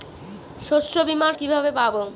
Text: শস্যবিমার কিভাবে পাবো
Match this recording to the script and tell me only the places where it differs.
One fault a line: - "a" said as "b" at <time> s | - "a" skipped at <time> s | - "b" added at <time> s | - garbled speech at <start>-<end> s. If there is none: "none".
none